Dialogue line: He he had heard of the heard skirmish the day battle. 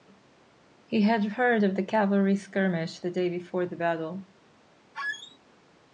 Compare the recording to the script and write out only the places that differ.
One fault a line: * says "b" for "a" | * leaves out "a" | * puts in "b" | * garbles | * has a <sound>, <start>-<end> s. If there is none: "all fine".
* leaves out "he"
* says "cavalry" for "heard"
* puts in "before the"
* has a squeak, 4.9-5.4 s